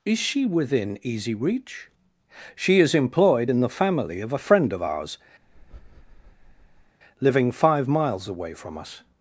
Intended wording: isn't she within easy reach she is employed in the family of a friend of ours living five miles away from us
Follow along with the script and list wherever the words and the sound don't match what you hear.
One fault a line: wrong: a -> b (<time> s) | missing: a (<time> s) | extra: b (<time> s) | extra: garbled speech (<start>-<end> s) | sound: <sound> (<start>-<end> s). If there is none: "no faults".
wrong: isn't -> is (0.0 s)
sound: breath (5.4-7.0 s)